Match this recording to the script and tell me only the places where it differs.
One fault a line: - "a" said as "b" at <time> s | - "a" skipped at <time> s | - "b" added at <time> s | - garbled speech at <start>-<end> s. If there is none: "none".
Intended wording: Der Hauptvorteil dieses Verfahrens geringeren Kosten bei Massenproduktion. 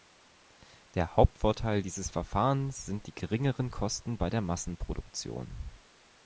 - "sind die" added at 2.8 s
- "der" added at 4.3 s